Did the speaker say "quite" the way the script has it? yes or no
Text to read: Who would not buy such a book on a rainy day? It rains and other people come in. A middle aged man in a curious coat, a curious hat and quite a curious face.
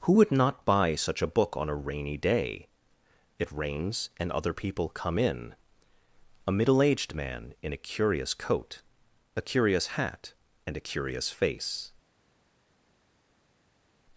no